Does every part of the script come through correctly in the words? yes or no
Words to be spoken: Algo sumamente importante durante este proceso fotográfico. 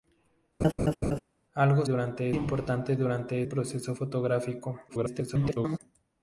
no